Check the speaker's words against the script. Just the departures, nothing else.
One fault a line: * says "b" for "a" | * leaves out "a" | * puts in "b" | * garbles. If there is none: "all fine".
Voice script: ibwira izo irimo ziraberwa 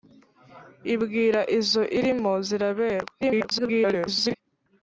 * garbles